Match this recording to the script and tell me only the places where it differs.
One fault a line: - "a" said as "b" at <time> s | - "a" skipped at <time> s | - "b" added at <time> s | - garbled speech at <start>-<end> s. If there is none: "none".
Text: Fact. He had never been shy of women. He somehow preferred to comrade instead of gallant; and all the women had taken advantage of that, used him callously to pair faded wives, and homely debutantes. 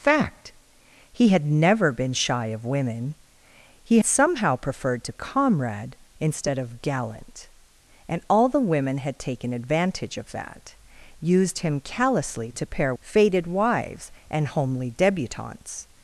none